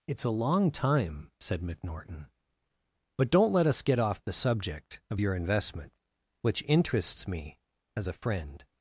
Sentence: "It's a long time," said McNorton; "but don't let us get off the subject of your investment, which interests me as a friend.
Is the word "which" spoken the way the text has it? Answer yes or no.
yes